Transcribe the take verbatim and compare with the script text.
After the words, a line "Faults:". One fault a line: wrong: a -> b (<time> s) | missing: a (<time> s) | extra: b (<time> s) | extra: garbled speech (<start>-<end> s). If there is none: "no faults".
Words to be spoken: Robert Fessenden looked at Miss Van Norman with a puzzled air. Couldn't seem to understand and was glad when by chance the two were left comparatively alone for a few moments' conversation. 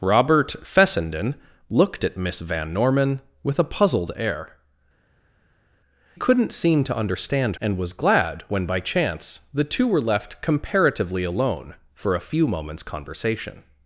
Robert Fessenden looked at Miss Van Norman with a puzzled air. Couldn't seem to understand and was glad when by chance the two were left comparatively alone for a few moments' conversation.
Faults:
no faults